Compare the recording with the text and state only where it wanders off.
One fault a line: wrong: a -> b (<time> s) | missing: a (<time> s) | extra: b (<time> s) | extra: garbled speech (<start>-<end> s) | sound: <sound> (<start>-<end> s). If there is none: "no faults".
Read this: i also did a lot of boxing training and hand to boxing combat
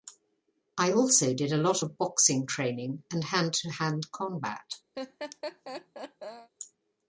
wrong: boxing -> hand (3.7 s)
sound: laugh (4.9-6.5 s)